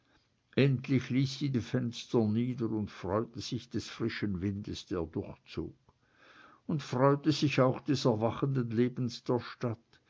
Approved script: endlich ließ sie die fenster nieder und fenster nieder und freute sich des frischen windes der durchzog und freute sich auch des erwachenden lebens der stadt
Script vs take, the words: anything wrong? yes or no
yes